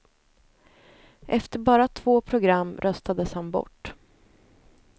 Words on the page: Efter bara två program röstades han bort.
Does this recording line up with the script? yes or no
yes